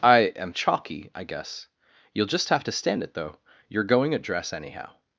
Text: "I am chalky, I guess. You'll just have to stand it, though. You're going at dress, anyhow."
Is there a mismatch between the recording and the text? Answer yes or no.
no